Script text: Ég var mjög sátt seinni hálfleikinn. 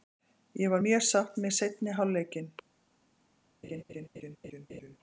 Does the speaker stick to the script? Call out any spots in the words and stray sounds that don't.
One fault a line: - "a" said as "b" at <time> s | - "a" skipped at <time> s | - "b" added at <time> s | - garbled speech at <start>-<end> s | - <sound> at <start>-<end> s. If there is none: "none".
- "með" added at 1.4 s
- laugh at 3.6-5.0 s